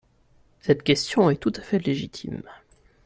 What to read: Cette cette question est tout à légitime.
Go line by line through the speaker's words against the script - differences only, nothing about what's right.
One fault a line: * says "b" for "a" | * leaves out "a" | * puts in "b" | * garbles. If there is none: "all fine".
* leaves out "cette"
* puts in "fait"